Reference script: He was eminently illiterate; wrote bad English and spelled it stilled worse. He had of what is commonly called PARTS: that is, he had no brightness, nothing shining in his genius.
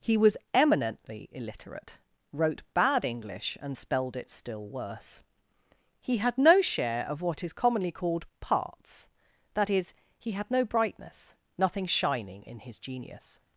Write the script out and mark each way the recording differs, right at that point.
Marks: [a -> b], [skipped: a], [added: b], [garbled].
He was eminently illiterate; wrote bad English and spelled it [stilled -> still] worse. He had [added: no share] of what is commonly called PARTS: that is, he had no brightness, nothing shining in his genius.